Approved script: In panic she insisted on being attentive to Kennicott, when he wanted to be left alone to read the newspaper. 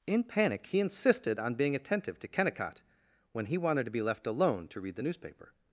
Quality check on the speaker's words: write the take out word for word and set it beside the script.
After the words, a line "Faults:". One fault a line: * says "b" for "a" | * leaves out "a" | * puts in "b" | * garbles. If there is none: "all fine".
In panic he insisted on being attentive to Kennicott, when he wanted to be left alone to read the newspaper.
Faults:
* says "he" for "she"